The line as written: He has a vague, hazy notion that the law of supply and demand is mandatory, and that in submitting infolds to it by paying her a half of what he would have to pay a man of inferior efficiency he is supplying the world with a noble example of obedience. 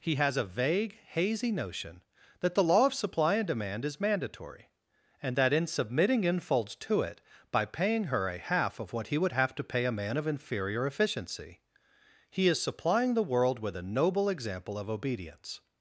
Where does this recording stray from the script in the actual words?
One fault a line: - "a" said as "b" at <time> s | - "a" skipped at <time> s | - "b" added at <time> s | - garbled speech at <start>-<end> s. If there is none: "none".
none